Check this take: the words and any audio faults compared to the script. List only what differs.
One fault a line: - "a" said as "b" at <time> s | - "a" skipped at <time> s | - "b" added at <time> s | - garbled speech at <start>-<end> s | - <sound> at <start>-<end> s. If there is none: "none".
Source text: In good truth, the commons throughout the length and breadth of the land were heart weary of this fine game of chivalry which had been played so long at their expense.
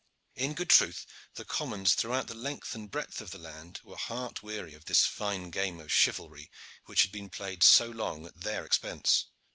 none